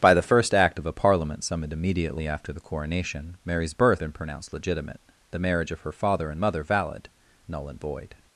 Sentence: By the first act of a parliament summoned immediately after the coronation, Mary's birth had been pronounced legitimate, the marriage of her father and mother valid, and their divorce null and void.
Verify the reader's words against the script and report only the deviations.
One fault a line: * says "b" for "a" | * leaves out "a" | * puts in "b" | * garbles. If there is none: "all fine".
* leaves out "had"
* leaves out "and their divorce"